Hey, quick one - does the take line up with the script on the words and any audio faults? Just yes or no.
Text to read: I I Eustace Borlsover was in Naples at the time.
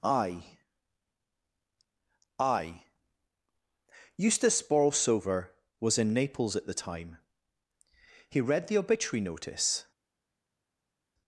no